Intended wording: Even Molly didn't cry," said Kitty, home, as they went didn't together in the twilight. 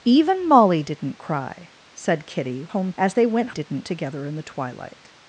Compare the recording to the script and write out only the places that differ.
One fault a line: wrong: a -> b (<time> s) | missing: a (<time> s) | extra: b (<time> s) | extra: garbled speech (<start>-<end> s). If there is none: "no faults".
no faults